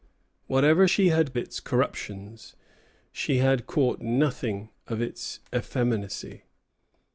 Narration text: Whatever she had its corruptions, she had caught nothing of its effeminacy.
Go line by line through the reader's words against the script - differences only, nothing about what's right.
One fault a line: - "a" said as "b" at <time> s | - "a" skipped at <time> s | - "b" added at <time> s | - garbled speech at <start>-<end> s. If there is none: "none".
none